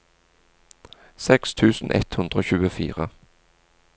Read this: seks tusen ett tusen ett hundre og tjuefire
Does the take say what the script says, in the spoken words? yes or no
no